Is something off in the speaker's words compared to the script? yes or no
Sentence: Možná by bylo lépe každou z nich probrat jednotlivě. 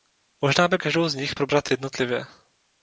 yes